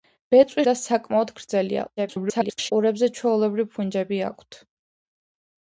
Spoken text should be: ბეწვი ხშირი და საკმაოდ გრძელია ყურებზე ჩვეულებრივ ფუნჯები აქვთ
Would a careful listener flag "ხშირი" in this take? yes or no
yes